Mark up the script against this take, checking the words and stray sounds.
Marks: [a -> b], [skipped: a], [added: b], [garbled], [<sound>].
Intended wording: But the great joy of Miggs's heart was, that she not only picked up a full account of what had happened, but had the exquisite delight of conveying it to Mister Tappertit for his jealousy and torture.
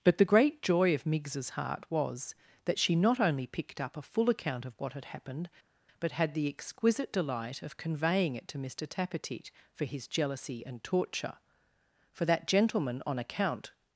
But the great joy of Miggs's heart was, that she not only picked up a full account of what had happened, but had the exquisite delight of conveying it to Mister Tappertit for his jealousy and torture. [added: For that gentleman on account]